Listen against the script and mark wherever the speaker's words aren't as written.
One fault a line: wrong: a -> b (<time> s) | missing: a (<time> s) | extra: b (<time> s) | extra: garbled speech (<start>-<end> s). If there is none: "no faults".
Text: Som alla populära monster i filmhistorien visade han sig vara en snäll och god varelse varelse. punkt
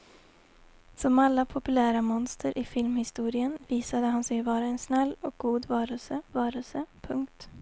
no faults